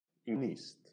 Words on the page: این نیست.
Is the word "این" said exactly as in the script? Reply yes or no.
yes